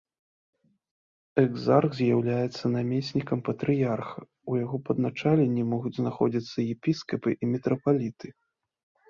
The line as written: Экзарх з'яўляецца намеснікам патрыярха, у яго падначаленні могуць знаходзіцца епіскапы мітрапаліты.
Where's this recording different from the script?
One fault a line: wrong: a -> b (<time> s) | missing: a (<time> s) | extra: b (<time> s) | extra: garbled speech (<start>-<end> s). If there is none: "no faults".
extra: і (7.4 s)